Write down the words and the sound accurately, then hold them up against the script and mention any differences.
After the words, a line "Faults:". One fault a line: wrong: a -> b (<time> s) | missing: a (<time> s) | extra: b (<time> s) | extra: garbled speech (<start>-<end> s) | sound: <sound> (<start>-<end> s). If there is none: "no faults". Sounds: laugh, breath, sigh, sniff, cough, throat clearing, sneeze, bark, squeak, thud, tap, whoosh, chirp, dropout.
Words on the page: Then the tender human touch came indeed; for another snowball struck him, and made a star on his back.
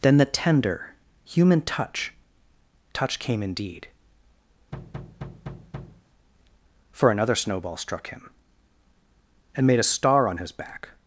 Then the tender human touch touch came indeed; for another snowball struck him, and made a star on his back.
Faults:
extra: touch (2.9 s)
sound: thud (4.7-6.0 s)